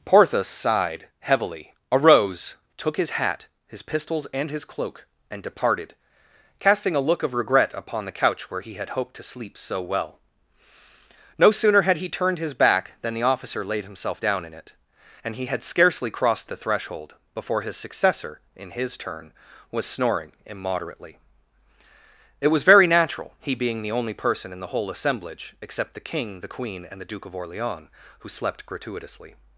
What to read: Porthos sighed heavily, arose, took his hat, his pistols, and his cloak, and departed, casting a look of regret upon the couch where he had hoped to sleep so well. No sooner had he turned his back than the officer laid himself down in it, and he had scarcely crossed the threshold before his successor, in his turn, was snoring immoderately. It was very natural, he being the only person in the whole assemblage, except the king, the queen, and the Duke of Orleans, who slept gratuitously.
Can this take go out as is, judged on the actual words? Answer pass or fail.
pass